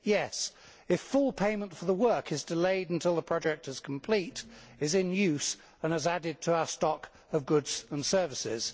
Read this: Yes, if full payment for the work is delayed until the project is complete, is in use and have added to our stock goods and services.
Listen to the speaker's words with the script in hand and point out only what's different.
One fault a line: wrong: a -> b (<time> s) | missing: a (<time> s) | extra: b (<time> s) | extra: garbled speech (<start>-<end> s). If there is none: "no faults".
wrong: have -> has (5.9 s)
extra: of (7.3 s)